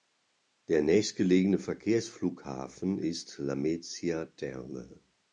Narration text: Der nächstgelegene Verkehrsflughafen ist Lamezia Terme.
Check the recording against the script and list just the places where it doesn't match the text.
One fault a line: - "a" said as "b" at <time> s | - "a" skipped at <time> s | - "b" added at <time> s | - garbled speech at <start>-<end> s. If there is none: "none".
none